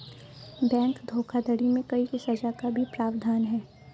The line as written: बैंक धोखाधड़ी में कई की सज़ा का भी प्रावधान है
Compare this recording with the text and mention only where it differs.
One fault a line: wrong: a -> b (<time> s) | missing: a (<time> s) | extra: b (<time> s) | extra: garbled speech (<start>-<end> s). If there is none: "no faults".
no faults